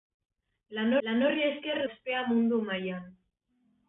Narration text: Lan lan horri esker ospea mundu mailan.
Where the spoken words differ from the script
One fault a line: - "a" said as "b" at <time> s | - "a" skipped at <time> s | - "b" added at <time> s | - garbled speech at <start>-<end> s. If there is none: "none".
none